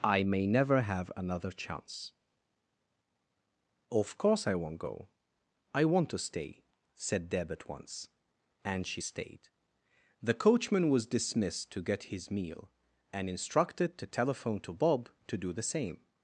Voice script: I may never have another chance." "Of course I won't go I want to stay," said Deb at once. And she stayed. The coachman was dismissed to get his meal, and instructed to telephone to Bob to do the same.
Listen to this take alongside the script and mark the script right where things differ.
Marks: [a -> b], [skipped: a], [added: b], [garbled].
I may never have another chance." "Of course I won't go I want to stay," said Deb at once. And she stayed. The coachman was dismissed to get his meal, and instructed to telephone to Bob to do the same.